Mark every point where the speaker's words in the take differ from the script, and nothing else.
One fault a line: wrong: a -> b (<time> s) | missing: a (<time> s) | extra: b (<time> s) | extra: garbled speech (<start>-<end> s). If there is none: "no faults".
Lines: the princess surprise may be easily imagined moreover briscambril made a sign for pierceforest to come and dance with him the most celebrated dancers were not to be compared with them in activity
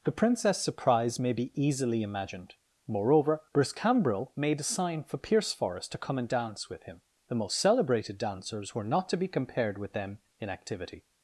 no faults